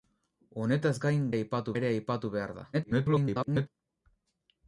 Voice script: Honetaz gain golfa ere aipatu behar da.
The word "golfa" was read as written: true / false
false